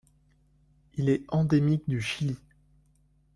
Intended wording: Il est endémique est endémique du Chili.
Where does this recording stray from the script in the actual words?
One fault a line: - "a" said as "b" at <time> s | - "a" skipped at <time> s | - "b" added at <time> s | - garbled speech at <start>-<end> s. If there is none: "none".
- "est endémique" skipped at 1.8 s